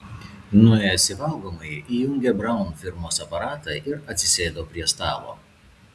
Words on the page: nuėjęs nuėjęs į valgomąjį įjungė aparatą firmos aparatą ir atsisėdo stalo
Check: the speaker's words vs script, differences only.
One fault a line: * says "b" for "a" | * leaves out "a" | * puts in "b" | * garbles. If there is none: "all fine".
* leaves out "nuėjęs"
* says "braun" for "aparatą"
* puts in "prie"